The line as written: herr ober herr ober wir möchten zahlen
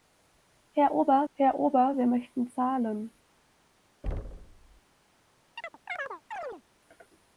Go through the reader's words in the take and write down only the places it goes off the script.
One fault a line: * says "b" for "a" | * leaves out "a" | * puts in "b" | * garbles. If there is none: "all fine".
all fine